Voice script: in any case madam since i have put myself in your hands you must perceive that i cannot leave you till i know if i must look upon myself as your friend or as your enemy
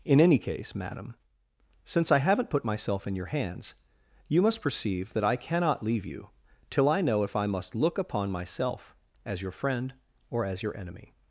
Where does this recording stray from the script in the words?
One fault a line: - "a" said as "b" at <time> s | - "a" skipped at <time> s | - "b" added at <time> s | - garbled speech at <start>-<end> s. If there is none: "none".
- "have" said as "haven't" at 2.2 s